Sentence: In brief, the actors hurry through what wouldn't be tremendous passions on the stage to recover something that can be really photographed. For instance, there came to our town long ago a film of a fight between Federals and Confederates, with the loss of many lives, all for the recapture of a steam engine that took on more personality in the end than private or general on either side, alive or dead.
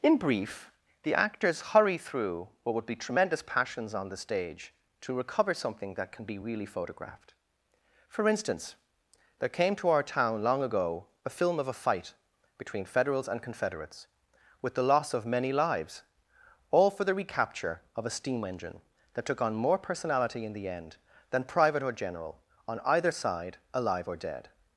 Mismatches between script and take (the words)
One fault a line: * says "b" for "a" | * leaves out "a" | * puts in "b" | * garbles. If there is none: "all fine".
* says "would" for "wouldn't"